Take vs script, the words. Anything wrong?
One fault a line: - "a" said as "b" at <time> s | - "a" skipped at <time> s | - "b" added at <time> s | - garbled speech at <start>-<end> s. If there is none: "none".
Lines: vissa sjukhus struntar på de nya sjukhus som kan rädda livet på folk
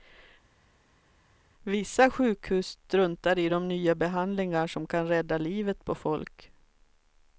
- "på" said as "i" at 3.4 s
- "sjukhus" said as "behandlingar" at 3.9 s